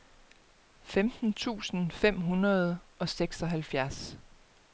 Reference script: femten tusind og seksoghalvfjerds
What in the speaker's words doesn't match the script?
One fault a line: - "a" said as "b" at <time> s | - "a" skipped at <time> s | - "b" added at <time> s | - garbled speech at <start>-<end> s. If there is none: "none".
- "fem hundrede" added at 1.9 s